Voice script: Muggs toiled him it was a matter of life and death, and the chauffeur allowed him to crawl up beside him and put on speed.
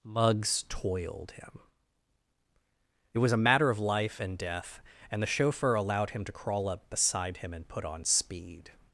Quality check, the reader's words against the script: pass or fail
pass